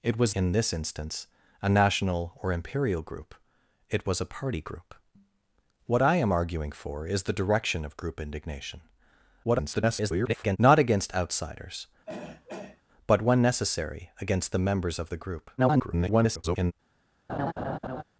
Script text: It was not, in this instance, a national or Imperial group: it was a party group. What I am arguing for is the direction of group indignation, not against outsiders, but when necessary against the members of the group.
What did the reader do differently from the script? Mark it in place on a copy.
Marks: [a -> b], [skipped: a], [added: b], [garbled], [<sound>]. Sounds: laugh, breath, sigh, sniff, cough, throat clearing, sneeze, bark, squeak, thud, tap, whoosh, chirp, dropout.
It was [skipped: not,] in this instance, a national or Imperial group: it was a party group. What I am arguing for is the direction of group indignation, [garbled] not against outsiders, [throat clearing] but when necessary against the members of the group. [garbled] [laugh]